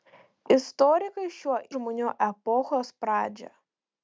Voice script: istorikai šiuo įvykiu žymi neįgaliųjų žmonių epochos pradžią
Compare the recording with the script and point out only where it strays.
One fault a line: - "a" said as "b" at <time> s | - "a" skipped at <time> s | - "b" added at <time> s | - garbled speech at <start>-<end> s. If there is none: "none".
- "įvykiu žymi neįgaliųjų" skipped at 1.6 s